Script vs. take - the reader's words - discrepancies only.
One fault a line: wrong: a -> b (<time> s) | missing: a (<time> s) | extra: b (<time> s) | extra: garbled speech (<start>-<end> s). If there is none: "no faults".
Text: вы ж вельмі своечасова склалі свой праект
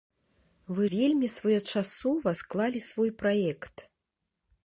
missing: ж (0.9 s)